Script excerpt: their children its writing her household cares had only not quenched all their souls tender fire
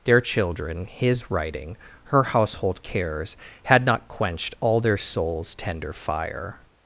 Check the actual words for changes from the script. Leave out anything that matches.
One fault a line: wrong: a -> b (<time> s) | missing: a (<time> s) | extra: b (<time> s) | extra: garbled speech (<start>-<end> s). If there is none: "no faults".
wrong: its -> his (0.8 s)
missing: only (3.9 s)